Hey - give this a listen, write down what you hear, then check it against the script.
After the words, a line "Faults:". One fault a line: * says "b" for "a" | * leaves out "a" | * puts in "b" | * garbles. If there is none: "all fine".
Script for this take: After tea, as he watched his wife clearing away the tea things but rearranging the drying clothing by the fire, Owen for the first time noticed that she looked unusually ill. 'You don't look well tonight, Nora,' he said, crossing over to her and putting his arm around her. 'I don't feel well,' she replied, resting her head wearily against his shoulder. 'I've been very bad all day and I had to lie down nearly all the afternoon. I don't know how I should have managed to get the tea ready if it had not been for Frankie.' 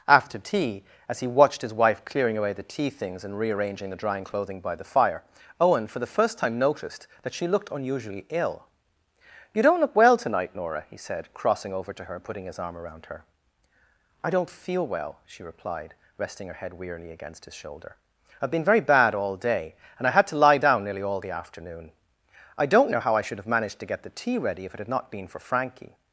After tea, as he watched his wife clearing away the tea things and rearranging the drying clothing by the fire, Owen for the first time noticed that she looked unusually ill. 'You don't look well tonight, Nora,' he said, crossing over to her and putting his arm around her. 'I don't feel well,' she replied, resting her head wearily against his shoulder. 'I've been very bad all day and I had to lie down nearly all the afternoon. I don't know how I should have managed to get the tea ready if it had not been for Frankie.'
Faults:
* says "and" for "but"